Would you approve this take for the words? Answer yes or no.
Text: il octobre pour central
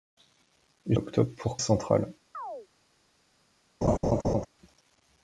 yes